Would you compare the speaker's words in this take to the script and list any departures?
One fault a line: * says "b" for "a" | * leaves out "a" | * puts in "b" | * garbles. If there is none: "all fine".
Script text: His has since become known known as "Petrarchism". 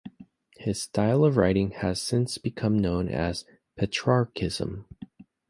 * puts in "style of writing"
* leaves out "known"